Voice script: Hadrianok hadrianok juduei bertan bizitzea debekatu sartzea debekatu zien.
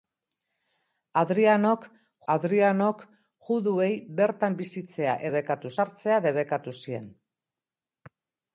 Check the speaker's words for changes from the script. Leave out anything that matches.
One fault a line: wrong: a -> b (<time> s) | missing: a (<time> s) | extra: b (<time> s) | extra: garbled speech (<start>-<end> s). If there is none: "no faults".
no faults